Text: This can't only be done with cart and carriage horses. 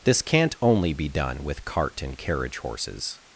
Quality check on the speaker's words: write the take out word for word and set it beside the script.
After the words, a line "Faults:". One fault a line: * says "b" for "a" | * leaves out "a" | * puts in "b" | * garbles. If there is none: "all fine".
This can't only be done with cart and carriage horses.
Faults:
all fine